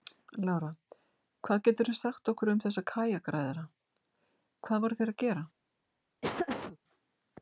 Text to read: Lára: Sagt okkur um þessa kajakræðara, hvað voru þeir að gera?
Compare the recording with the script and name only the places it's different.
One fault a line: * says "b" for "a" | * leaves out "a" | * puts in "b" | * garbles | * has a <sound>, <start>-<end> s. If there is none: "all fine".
* puts in "Hvað geturðu"
* has a laugh, 6.2-6.8 s